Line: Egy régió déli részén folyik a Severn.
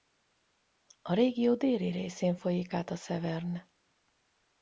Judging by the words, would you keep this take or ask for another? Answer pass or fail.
fail